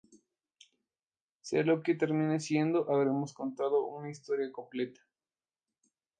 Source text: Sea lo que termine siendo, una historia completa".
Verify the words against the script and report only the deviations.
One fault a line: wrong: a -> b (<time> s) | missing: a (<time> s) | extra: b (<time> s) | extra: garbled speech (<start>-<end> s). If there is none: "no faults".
extra: habremos contado (2.9 s)